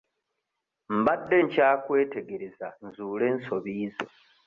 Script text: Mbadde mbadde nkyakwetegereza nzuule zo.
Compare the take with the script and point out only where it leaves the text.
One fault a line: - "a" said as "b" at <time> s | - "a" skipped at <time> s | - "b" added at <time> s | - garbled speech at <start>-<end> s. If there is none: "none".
- "mbadde" skipped at 1.4 s
- "ensobi" added at 3.3 s